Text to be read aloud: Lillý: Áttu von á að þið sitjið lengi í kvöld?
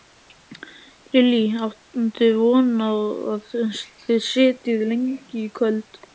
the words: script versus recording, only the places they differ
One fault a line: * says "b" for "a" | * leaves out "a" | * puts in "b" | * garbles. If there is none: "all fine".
all fine